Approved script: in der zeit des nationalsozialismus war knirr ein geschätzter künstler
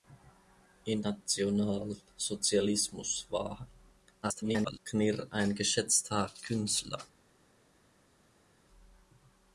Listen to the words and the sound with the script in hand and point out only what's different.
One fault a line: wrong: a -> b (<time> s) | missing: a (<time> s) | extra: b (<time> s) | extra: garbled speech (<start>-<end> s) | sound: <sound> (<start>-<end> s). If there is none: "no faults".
missing: der zeit des (1.0 s)
extra: garbled speech (4.2-4.8 s)